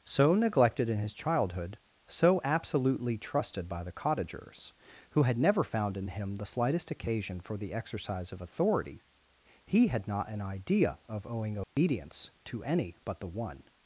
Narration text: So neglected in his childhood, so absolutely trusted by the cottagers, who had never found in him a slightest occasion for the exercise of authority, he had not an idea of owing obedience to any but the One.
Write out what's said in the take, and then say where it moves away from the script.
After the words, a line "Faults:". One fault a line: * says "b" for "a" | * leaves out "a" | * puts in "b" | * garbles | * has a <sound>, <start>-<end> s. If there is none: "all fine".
So neglected in his childhood, so absolutely trusted by the cottagers, who had never found in him the slightest occasion for the exercise of authority, he had not an idea of owing obedience to any but the One.
Faults:
* says "the" for "a"
* has a dropout, 11.6-11.8 s